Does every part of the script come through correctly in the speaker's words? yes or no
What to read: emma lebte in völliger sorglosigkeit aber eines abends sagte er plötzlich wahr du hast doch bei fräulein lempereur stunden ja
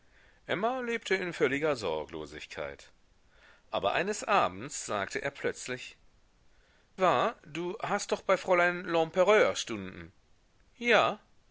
yes